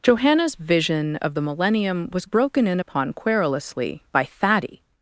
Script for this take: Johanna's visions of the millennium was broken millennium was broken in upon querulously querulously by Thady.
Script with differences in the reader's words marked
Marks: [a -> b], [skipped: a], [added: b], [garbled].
Johanna's [visions -> vision] of the millennium was broken [skipped: millennium was broken] in upon querulously [skipped: querulously] by Thady.